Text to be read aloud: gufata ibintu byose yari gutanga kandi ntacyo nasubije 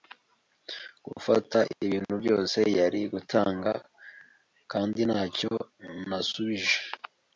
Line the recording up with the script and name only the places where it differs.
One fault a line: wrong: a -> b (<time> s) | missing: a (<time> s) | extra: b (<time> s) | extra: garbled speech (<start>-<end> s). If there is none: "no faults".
no faults